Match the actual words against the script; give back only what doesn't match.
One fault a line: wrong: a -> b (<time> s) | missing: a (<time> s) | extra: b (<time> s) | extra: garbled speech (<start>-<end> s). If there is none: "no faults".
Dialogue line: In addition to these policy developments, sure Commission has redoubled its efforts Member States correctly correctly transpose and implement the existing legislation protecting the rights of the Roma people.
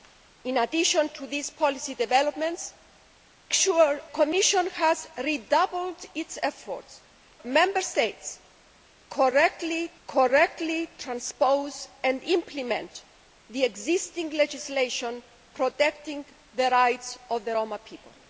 no faults